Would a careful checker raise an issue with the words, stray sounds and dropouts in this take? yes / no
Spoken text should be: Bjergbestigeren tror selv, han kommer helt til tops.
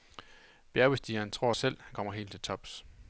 no